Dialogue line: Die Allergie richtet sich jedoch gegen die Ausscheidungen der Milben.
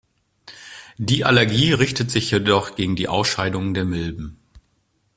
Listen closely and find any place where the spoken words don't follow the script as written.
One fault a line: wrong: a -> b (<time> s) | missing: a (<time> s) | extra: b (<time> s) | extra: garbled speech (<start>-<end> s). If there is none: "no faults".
no faults